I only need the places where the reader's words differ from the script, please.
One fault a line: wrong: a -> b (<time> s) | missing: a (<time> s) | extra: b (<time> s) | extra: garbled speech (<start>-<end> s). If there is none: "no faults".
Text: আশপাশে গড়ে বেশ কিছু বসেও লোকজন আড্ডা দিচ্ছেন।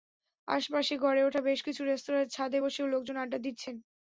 extra: ওঠা (1.2 s)
extra: রেস্তোরাঁর ছাদে (1.8 s)